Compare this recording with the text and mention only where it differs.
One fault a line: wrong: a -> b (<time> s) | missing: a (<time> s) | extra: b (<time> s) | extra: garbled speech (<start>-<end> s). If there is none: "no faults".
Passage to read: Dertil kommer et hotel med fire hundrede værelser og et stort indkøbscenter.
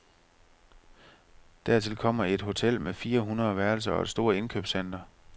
no faults